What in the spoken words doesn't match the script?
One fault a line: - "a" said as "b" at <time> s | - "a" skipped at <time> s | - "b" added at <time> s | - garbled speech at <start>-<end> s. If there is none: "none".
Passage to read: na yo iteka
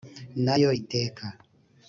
none